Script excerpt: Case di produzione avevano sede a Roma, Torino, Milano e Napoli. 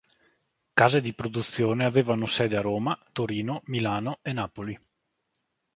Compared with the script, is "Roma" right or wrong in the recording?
right